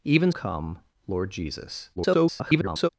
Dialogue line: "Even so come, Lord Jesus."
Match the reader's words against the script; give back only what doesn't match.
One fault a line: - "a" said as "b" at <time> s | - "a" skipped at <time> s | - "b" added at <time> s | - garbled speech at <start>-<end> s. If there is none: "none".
- "so" skipped at 0.3 s
- garbled speech at 2.0-2.9 s